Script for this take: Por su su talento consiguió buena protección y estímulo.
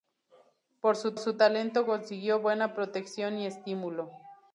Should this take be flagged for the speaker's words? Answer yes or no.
no